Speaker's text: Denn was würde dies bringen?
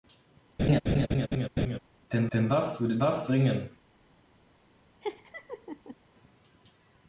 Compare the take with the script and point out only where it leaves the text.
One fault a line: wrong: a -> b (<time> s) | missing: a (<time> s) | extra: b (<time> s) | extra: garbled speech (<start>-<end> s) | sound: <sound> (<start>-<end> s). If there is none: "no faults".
sound: laugh (0.6-1.8 s)
extra: denn (2.3 s)
wrong: dies -> was (3.0 s)
sound: laugh (5.0-6.0 s)